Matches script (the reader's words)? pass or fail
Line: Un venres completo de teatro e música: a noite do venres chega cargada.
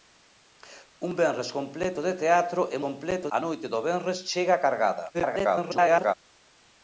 fail